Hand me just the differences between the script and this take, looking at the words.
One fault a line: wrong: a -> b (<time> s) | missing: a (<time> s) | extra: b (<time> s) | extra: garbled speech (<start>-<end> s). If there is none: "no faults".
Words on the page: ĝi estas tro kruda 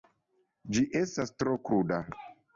no faults